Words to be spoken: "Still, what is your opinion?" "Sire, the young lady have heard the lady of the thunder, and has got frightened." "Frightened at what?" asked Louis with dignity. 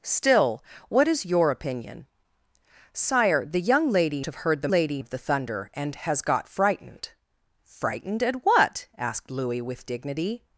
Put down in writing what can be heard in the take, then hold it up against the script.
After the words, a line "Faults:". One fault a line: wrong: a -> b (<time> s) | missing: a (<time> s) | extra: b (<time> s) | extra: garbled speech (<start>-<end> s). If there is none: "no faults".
"Still, what is your opinion?" "Sire, the young lady have heard the lady of the thunder, and has got frightened." "Frightened at what?" asked Louis with dignity.
Faults:
no faults